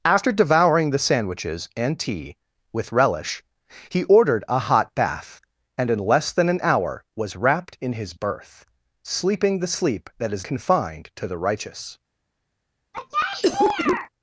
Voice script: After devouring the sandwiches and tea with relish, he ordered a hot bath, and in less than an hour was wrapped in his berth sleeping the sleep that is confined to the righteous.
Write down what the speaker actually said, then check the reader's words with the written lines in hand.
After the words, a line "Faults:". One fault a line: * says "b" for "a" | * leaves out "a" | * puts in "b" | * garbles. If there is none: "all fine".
After devouring the sandwiches and tea with relish, he ordered a hot bath, and in less than an hour was wrapped in his berth sleeping the sleep that is confined to the righteous.
Faults:
all fine